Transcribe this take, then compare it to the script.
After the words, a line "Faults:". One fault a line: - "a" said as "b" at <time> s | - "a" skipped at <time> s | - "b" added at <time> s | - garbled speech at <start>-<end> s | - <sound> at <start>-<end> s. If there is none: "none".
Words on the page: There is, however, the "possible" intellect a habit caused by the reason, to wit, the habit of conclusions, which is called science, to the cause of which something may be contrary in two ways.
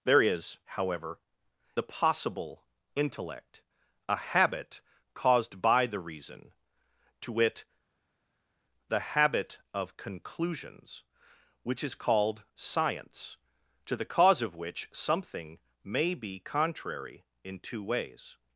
There is, however, the "possible" intellect a habit caused by the reason, to wit, the habit of conclusions, which is called science, to the cause of which something may be contrary in two ways.
Faults:
none